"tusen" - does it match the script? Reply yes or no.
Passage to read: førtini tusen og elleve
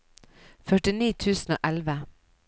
yes